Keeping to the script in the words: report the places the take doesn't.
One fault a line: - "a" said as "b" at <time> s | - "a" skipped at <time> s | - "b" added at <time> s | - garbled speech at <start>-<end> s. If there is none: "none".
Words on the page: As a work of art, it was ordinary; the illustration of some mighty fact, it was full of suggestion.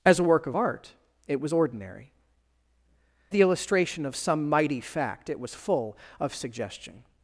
none